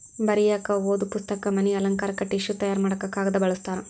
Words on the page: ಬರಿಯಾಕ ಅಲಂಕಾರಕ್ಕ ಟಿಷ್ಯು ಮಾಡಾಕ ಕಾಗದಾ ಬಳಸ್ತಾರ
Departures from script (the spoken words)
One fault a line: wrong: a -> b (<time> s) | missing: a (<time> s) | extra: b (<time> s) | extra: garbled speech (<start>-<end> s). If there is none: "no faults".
extra: ಓದು ಪುಸ್ತಕ ಮನಿ (0.8 s)
extra: ತಯಾರ (2.5 s)